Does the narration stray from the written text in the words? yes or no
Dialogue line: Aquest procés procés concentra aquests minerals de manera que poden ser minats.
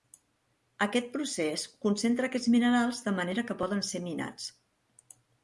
yes